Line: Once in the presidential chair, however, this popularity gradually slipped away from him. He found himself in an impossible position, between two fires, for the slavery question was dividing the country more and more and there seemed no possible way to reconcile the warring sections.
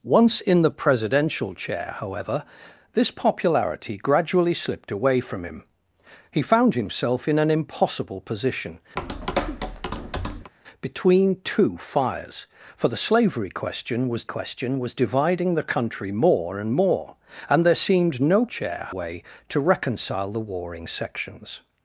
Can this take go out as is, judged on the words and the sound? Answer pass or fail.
fail